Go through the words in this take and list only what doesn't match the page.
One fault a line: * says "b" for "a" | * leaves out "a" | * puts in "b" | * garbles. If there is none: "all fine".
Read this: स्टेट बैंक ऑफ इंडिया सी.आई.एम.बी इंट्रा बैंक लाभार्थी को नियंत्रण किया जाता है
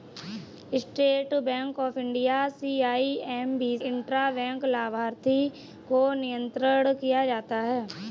all fine